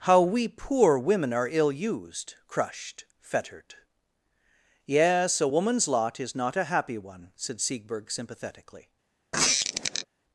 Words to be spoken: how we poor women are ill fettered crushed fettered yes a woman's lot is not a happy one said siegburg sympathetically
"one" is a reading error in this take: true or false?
false